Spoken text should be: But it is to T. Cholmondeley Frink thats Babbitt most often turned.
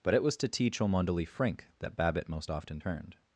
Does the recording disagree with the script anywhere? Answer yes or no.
yes